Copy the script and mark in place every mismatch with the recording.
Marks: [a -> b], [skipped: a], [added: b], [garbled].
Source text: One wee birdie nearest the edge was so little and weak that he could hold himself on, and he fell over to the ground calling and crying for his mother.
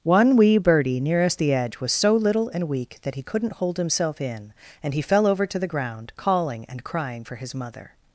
One wee birdie nearest the edge was so little and weak that he [could -> couldn't] hold himself [on, -> in] and he fell over to the ground calling and crying for his mother.